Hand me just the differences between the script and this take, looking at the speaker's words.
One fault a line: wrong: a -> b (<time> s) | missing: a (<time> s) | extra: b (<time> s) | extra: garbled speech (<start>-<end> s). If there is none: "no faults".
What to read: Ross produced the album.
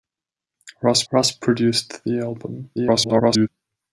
extra: ross (1.1 s)
extra: garbled speech (2.7-3.5 s)